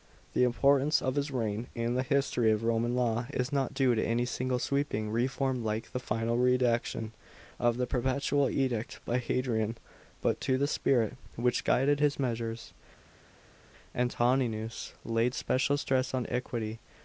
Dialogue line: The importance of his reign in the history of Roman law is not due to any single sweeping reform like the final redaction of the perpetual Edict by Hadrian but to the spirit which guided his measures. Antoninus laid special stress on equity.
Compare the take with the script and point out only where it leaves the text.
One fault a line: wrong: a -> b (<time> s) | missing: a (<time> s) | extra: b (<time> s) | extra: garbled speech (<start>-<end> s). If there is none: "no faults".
no faults